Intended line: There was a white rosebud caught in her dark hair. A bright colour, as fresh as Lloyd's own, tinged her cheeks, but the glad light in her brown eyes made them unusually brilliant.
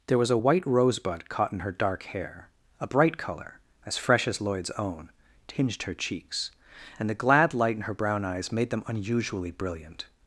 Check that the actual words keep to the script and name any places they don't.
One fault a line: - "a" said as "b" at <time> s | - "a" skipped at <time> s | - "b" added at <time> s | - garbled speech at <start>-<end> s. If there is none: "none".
- "but" said as "and" at 7.0 s